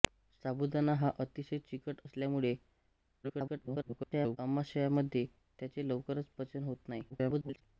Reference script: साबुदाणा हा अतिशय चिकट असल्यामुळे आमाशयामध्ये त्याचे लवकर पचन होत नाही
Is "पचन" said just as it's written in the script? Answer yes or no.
yes